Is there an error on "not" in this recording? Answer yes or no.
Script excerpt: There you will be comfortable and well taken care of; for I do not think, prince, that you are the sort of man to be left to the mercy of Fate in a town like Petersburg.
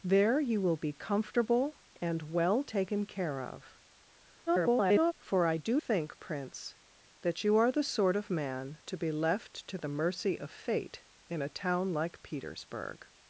yes